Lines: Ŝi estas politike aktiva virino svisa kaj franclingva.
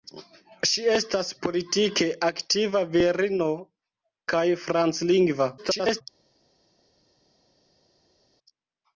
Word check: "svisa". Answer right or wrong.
wrong